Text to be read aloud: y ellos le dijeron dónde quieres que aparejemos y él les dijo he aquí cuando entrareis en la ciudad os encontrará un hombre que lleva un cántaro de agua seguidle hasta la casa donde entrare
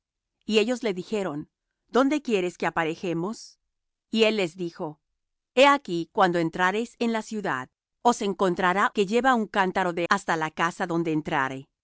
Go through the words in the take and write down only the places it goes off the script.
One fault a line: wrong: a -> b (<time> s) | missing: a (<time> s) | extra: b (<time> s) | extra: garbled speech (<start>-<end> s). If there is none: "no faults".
missing: un hombre (8.9 s)
missing: agua seguidle (10.1 s)